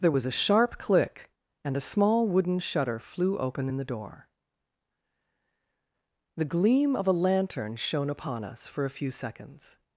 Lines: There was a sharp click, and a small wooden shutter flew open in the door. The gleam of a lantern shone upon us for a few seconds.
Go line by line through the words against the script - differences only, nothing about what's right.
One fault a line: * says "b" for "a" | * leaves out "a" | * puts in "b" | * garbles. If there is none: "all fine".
all fine